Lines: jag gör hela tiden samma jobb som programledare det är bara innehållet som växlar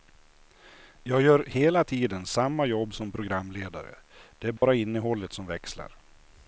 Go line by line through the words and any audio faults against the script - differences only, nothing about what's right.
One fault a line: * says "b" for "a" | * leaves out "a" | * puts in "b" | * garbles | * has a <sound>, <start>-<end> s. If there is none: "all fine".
* has a dropout, 4.6-4.6 s